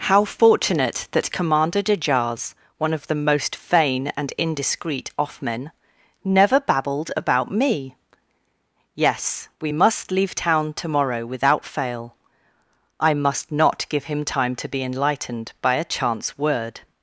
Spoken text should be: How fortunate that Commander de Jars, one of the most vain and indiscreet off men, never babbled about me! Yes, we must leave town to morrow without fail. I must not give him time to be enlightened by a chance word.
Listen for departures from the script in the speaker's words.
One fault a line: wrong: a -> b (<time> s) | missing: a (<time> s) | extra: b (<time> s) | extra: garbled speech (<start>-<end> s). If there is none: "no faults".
no faults